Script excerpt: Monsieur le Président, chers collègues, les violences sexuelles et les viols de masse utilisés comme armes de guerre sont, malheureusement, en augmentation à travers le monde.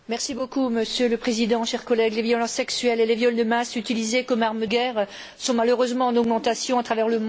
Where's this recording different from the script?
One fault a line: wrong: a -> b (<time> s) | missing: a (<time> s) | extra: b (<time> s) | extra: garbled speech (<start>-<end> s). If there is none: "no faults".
missing: de (4.7 s)